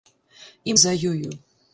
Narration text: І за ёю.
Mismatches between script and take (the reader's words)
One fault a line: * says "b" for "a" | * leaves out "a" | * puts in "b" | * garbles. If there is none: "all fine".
all fine